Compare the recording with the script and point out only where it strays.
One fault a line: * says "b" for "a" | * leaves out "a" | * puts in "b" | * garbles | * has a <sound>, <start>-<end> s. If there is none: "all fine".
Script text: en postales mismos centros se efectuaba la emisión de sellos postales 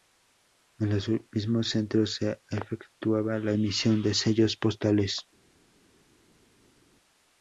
* says "los" for "postales"